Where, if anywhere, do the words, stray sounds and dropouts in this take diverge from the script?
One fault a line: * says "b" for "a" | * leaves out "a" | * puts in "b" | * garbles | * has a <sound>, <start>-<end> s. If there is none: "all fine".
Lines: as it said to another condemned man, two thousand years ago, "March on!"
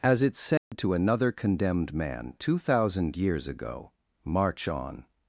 * has a dropout, 0.6-0.7 s